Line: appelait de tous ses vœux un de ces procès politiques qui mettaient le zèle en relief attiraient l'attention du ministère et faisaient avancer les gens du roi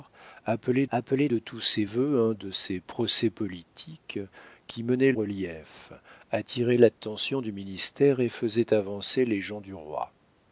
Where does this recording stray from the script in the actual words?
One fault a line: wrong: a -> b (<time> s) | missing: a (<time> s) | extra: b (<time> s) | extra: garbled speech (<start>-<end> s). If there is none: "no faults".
extra: appelait (0.9 s)
missing: le zèle en (5.1 s)